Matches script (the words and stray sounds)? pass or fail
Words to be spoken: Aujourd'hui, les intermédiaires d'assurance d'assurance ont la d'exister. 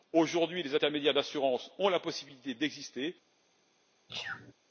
fail